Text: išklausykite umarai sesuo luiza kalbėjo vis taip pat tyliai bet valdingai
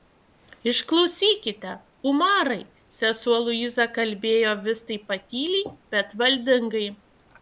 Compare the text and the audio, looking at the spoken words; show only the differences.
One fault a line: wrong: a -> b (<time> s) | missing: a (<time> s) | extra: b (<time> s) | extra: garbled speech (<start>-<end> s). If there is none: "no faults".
no faults